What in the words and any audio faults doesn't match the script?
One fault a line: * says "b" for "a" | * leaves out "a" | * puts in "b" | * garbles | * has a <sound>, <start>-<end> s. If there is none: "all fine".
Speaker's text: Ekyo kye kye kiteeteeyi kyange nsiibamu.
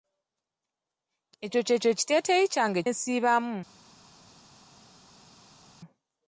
all fine